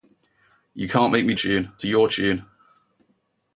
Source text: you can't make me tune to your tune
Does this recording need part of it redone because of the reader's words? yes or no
no